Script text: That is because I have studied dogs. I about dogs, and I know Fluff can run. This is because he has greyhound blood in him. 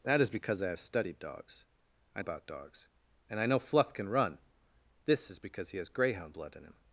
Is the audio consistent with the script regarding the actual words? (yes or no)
yes